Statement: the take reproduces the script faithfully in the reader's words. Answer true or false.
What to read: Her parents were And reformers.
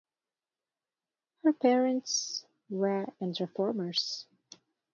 true